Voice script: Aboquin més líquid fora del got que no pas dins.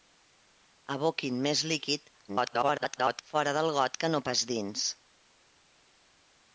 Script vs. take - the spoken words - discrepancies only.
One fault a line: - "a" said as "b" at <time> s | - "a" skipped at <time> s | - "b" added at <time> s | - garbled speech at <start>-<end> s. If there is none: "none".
- garbled speech at 2.3-3.2 s